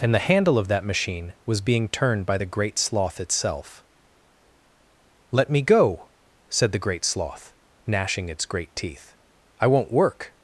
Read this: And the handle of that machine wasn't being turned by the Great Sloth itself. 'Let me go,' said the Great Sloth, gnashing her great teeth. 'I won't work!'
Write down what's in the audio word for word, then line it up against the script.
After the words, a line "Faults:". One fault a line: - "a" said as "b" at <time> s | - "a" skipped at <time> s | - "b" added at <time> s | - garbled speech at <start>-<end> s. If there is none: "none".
And the handle of that machine was being turned by the Great Sloth itself. 'Let me go,' said the Great Sloth, gnashing its great teeth. 'I won't work!'
Faults:
- "wasn't" said as "was" at 1.4 s
- "her" said as "its" at 8.3 s